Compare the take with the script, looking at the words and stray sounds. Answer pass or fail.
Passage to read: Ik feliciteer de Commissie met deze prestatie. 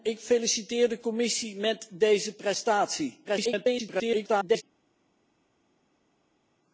fail